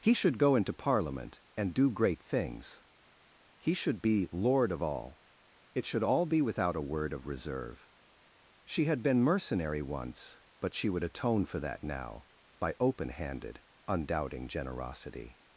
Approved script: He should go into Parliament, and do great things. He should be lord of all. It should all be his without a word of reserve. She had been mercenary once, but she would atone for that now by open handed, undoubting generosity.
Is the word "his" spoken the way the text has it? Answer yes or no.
no